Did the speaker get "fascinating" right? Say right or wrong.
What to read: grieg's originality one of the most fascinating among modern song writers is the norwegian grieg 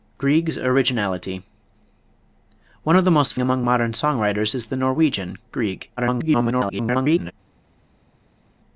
wrong